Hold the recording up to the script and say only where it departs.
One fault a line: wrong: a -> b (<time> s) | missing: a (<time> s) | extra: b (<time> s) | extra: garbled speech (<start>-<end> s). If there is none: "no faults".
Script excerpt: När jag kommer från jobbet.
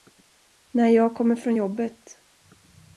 no faults